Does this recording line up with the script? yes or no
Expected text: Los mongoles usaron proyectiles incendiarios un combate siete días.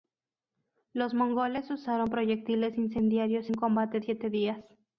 yes